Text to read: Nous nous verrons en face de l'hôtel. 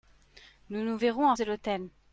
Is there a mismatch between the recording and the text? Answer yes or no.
yes